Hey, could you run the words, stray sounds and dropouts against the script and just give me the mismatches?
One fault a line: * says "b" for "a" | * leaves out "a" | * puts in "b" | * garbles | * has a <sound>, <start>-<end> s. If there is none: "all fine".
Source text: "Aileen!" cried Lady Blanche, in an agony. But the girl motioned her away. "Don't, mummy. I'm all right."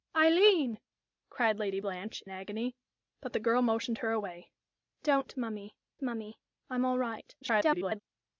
* leaves out "in"
* puts in "mummy"
* garbles